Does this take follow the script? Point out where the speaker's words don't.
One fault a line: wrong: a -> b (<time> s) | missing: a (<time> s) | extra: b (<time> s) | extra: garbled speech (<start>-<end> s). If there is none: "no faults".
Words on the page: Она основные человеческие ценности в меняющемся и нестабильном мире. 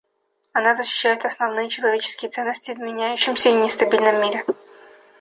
extra: защищает (0.7 s)